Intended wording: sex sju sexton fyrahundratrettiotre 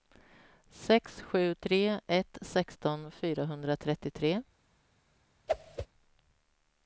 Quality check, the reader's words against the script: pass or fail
fail